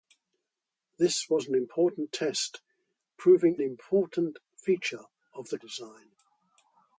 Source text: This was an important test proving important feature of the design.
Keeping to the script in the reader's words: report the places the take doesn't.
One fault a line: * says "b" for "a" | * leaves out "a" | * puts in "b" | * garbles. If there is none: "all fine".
all fine